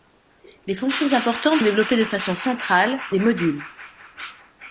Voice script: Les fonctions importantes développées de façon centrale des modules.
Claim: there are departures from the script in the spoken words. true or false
false